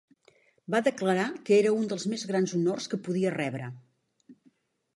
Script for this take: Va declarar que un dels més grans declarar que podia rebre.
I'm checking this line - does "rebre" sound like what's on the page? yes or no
yes